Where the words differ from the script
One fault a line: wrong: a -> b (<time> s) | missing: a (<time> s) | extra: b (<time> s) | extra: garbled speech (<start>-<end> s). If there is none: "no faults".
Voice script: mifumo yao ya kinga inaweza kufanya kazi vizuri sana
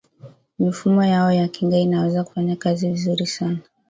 no faults